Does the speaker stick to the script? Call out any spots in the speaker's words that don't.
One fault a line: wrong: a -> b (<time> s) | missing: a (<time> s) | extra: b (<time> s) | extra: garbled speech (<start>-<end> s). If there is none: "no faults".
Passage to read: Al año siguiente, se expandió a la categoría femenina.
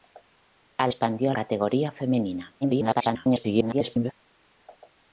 missing: año siguiente se (0.9 s)
missing: la (1.3 s)
extra: garbled speech (2.6-4.1 s)